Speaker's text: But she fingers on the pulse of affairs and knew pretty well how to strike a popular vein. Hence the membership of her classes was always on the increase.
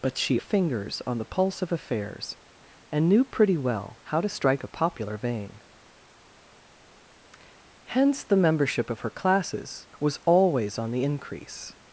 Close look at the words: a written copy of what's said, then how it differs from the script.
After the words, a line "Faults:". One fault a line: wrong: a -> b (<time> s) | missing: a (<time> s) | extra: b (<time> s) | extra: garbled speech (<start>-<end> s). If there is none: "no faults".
But she fingers on the pulse of affairs and knew pretty well how to strike a popular vein. Hence the membership of her classes was always on the increase.
Faults:
no faults